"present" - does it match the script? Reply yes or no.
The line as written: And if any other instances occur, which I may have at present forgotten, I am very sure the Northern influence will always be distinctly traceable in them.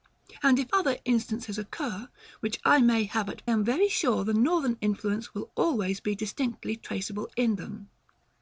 no